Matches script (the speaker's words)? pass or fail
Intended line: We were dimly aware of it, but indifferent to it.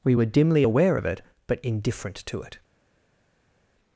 pass